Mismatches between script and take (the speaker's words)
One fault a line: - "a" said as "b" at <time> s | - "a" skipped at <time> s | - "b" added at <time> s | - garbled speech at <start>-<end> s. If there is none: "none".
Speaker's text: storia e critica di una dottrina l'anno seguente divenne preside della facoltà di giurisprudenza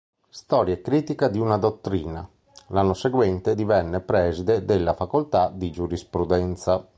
none